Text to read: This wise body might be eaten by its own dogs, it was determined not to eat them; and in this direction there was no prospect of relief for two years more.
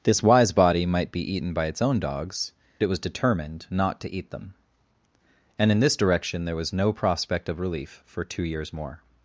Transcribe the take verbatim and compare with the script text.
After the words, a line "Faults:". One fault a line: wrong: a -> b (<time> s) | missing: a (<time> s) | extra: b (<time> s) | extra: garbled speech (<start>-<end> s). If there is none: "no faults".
This wise body might be eaten by its own dogs, it was determined not to eat them; and in this direction there was no prospect of relief for two years more.
Faults:
no faults